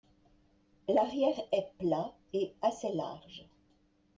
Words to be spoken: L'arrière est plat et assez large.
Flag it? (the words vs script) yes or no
no